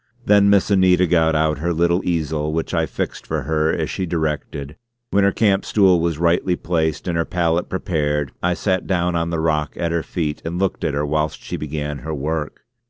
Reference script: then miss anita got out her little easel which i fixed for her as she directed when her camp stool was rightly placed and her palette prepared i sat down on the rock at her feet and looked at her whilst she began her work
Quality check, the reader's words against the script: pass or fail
pass